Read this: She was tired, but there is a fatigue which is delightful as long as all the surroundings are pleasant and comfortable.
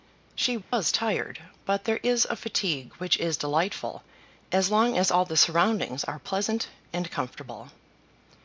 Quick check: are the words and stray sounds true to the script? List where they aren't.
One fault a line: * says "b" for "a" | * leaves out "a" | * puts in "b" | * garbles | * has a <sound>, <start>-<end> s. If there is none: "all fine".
* has a dropout, 0.6-0.7 s